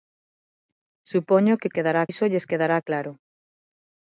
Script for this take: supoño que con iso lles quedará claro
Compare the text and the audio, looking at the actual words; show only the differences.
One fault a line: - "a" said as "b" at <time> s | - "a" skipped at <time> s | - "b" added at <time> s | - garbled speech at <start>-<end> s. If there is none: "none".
- "con" said as "quedará" at 1.7 s